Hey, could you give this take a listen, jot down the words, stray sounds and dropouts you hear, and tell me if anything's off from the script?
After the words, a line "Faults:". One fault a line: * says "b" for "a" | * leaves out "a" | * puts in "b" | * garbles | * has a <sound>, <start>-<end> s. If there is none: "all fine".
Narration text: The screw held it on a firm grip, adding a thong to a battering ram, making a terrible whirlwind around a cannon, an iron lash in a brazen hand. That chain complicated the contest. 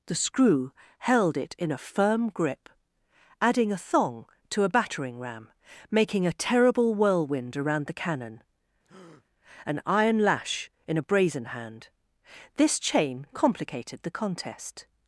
The screw held it in a firm grip, adding a thong to a battering ram, making a terrible whirlwind around the cannon, an iron lash in a brazen hand. This chain complicated the contest.
Faults:
* says "in" for "on"
* says "the" for "a"
* has a breath, 8.8-9.3 s
* says "This" for "That"